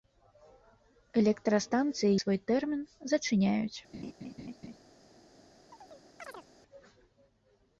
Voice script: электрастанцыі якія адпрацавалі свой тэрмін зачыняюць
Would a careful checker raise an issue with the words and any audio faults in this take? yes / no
yes